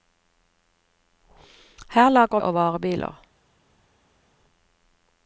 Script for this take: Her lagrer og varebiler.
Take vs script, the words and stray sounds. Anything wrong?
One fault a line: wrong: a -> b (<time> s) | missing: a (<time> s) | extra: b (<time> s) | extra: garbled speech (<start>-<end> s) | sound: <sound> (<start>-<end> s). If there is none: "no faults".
no faults